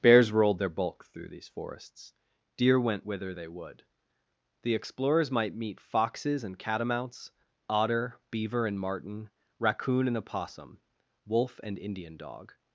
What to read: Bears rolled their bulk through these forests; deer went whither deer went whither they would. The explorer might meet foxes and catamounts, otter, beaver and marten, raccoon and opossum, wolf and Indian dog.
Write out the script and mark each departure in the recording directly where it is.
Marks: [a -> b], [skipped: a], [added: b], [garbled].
Bears rolled their bulk through these forests; deer went whither [skipped: deer went whither] they would. The [explorer -> explorers] might meet foxes and catamounts, otter, beaver and marten, raccoon and opossum, wolf and Indian dog.